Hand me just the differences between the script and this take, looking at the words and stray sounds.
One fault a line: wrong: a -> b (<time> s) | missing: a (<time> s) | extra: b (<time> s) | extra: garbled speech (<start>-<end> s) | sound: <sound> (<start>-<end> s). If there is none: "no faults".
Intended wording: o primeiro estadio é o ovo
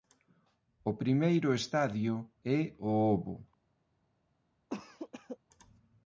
sound: cough (4.7-5.4 s)